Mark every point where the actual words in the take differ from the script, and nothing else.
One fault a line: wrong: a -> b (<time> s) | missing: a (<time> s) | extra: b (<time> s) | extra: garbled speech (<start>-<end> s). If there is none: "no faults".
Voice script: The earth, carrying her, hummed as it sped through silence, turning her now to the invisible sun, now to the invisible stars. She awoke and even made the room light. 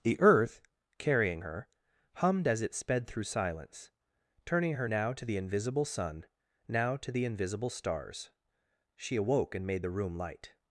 missing: even (9.7 s)